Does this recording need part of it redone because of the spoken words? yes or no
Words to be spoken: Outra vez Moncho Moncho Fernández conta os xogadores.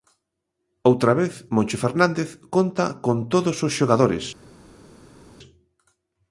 yes